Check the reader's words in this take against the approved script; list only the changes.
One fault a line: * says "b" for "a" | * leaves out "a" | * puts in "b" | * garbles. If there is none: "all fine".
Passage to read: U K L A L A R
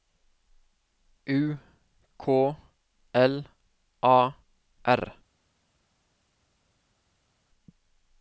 * leaves out "L A"